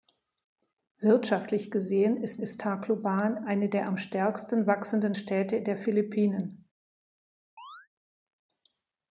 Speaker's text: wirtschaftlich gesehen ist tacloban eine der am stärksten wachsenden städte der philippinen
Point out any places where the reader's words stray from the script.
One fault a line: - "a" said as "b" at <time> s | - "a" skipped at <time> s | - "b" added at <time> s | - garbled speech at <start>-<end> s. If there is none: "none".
- "ist" added at 2.4 s